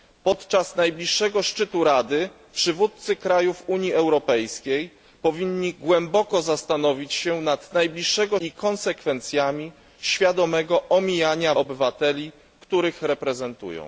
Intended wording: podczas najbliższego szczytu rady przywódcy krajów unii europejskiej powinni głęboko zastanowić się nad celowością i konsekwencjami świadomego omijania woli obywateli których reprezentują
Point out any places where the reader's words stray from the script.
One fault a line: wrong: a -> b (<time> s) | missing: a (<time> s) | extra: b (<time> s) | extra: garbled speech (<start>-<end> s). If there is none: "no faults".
wrong: celowością -> najbliższego (7.7 s)
missing: woli (11.5 s)